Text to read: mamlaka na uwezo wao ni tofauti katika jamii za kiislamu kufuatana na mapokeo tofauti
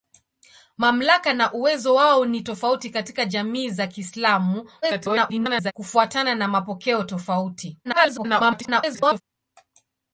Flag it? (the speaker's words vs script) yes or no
yes